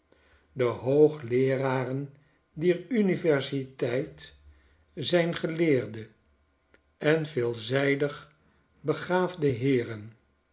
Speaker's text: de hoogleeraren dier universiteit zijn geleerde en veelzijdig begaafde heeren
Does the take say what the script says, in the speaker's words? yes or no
yes